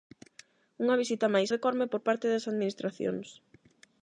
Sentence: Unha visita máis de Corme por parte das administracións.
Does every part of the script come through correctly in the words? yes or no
yes